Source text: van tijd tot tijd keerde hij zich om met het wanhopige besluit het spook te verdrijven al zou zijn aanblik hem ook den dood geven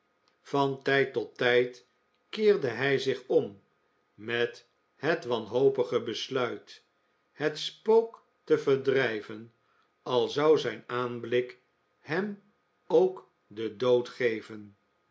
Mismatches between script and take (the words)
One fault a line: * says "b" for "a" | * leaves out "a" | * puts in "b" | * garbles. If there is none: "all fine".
all fine